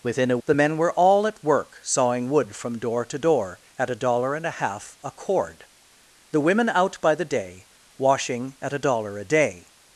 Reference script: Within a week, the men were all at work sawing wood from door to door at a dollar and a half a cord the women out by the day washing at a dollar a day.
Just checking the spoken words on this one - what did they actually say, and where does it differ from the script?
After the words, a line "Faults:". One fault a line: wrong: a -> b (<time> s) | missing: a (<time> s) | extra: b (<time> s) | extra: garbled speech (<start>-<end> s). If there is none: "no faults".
Within a the men were all at work sawing wood from door to door at a dollar and a half a cord the women out by the day washing at a dollar a day.
Faults:
missing: week (0.4 s)